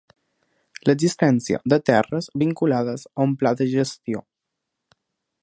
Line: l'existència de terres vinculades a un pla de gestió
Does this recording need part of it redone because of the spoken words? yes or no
no